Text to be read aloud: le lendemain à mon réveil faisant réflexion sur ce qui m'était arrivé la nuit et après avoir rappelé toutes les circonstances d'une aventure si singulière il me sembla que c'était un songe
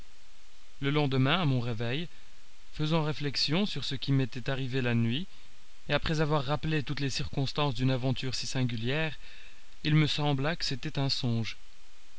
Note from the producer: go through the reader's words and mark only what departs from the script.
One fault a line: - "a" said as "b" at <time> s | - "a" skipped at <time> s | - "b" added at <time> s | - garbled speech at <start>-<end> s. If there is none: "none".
none